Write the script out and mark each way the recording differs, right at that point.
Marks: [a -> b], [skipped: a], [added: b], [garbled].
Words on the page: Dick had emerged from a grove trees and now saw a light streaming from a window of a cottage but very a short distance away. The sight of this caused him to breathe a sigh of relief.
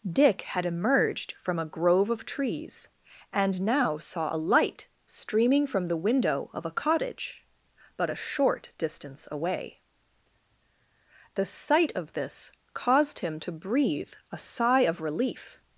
Dick had emerged from a grove [added: of] trees and now saw a light streaming from [a -> the] window of a cottage but [skipped: very] a short distance away. The sight of this caused him to breathe a sigh of relief.